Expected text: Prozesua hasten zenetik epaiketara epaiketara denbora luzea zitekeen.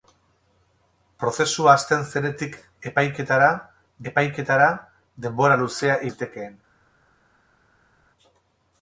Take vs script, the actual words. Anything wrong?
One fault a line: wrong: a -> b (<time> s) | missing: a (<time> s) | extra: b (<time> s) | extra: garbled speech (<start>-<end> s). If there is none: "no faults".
no faults